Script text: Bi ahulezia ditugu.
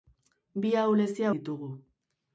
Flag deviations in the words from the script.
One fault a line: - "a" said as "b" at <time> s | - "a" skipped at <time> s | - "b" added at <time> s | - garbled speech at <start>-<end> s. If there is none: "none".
none